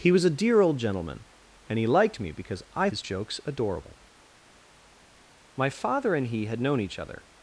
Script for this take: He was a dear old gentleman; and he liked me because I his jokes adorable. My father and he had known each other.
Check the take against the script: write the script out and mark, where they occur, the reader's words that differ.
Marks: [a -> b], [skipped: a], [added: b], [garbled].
He was a dear old gentleman; and he liked me because I his jokes adorable. My father and he had known each other.